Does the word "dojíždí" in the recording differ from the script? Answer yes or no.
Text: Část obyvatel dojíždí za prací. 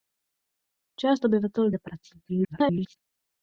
yes